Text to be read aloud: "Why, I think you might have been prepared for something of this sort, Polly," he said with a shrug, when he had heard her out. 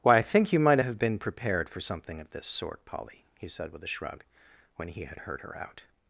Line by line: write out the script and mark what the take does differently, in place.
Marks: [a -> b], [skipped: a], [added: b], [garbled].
"Why, I think you might have been prepared for something of this sort, Polly," he said with a shrug, when he had heard her out.